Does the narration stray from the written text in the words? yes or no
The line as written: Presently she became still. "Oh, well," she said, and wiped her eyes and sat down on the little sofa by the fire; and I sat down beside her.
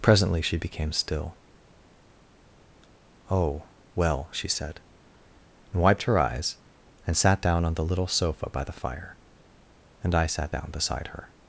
no